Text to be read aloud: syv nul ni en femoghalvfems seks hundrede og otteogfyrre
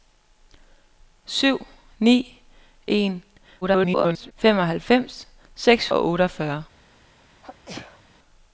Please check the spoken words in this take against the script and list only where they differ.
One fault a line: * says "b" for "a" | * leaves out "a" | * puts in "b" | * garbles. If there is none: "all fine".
* leaves out "nul"
* garbles
* leaves out "hundrede"